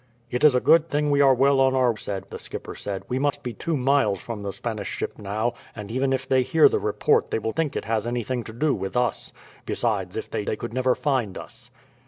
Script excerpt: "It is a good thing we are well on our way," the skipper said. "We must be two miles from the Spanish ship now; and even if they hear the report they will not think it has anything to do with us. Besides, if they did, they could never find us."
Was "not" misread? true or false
true